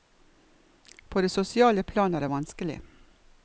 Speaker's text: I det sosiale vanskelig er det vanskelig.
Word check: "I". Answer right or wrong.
wrong